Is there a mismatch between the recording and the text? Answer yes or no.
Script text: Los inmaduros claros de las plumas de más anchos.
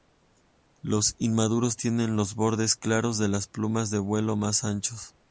yes